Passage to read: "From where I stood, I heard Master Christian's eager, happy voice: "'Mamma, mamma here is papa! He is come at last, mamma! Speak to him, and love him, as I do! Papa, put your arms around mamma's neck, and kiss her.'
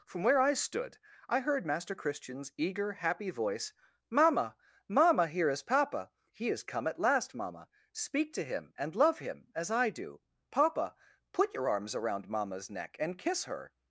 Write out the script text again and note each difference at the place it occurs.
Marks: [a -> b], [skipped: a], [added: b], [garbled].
"From where I stood, I heard Master Christian's eager, happy voice: "'Mamma, mamma here is papa! He is come at last, mamma! Speak to him, and love him, as I do! Papa, put your arms around mamma's neck, and kiss her.'